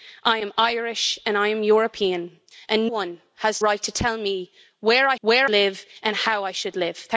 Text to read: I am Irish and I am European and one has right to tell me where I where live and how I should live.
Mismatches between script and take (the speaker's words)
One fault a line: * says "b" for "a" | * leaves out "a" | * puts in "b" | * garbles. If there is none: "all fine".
all fine